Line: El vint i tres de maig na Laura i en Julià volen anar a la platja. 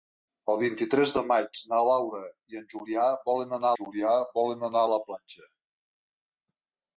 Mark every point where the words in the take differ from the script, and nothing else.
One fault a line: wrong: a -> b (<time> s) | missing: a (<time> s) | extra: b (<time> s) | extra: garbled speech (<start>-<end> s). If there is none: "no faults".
extra: Julià volen anar (3.8 s)